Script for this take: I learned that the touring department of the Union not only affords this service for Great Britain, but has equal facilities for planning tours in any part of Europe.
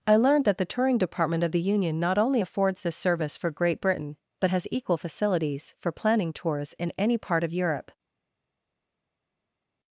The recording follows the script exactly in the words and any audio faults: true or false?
true